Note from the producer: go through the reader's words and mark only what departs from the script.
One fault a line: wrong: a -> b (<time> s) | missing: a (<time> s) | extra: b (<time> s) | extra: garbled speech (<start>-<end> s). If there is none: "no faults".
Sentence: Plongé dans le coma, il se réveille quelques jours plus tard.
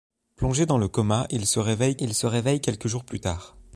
extra: il se réveille (2.0 s)